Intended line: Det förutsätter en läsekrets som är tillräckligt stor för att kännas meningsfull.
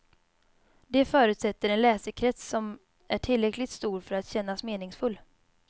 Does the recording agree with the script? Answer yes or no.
yes